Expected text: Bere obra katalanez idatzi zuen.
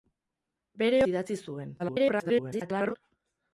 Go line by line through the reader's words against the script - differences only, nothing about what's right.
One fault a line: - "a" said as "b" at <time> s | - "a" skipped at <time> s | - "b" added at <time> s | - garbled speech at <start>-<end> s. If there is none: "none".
- "obra katalanez" skipped at 1.0 s
- garbled speech at 1.8-2.9 s